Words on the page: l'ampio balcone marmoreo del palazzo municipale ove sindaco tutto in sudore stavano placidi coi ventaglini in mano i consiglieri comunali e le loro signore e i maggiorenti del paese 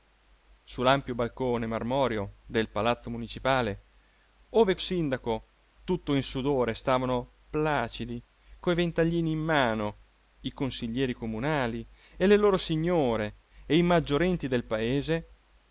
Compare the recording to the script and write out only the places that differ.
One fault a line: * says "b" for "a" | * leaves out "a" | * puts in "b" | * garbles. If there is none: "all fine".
all fine